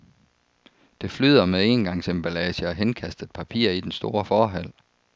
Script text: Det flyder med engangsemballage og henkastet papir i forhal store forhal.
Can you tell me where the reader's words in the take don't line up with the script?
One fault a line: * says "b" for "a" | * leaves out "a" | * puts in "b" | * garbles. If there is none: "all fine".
* says "den" for "forhal"